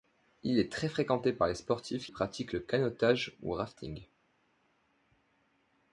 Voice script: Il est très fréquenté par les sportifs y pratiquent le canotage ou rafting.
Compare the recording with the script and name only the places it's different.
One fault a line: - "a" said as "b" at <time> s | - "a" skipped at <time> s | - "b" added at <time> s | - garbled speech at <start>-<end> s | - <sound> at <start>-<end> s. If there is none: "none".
none